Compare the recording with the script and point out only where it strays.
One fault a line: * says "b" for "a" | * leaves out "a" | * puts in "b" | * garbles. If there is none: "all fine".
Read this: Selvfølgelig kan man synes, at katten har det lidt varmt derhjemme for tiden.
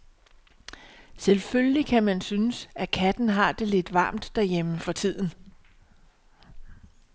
all fine